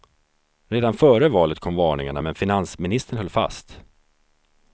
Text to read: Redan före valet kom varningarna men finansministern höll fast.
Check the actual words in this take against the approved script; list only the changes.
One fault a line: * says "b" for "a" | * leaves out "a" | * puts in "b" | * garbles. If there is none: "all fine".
all fine